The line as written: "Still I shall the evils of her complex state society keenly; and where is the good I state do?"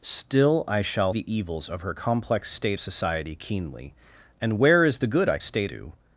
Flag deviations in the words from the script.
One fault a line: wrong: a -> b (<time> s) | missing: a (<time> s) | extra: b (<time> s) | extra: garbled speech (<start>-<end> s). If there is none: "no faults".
no faults